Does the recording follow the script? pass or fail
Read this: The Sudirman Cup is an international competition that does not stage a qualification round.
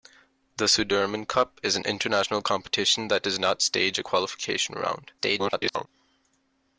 fail